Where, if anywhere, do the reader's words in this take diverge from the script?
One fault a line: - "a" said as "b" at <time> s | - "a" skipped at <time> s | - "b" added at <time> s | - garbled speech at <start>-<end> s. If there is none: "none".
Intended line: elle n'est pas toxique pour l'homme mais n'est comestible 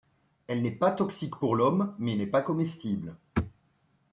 - "pas" added at 2.3 s